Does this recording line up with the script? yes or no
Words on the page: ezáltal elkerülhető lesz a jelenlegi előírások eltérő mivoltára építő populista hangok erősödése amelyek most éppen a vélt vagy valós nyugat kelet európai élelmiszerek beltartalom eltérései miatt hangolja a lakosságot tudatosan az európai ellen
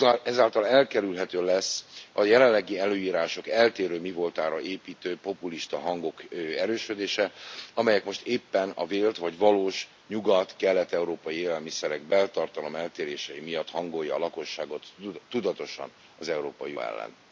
yes